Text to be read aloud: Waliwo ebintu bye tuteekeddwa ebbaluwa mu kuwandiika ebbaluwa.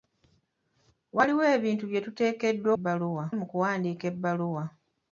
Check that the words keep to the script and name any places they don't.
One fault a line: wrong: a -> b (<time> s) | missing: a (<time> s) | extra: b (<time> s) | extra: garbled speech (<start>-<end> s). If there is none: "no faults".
no faults